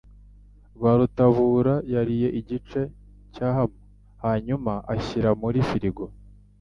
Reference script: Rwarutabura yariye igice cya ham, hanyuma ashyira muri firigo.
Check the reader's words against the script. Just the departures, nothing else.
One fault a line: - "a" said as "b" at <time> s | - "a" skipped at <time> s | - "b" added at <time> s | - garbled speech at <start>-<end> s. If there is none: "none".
none